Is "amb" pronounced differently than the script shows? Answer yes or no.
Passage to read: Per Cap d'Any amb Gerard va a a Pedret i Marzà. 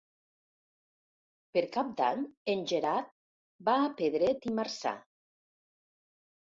yes